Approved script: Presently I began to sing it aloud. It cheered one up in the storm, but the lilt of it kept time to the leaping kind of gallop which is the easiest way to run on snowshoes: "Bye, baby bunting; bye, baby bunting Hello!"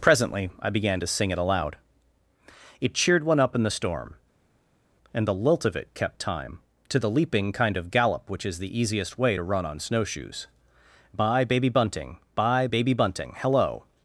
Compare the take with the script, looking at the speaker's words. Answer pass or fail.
fail